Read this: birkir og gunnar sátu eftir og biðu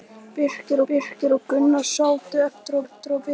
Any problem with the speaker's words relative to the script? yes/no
yes